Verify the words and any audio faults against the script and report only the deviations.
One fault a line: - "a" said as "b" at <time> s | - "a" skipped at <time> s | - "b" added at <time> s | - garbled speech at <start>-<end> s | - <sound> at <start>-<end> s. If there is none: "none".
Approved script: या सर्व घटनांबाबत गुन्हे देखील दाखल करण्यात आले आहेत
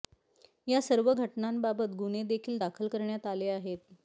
none